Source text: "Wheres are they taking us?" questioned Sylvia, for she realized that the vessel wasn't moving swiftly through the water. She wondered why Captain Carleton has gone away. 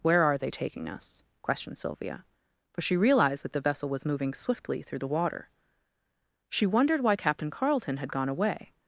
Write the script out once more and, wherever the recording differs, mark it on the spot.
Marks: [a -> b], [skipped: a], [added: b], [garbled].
["Wheres -> Where] are they taking us?" questioned Sylvia, for she realized that the vessel [wasn't -> was] moving swiftly through the water. She wondered why Captain Carleton [has -> had] gone away.